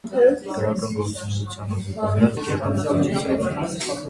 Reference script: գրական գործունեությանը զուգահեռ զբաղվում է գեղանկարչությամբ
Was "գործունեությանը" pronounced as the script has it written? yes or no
yes